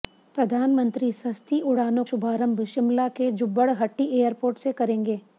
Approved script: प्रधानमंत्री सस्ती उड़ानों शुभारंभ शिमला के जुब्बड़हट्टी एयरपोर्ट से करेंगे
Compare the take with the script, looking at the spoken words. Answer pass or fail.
pass